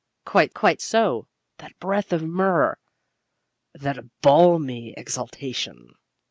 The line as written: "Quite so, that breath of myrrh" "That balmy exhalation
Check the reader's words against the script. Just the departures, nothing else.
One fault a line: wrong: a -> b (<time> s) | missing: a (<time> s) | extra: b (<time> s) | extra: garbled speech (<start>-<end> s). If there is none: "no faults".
extra: quite (0.5 s)